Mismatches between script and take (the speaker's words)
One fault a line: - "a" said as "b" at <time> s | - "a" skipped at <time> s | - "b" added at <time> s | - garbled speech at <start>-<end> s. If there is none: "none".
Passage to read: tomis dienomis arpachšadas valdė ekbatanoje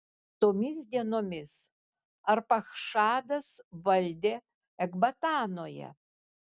none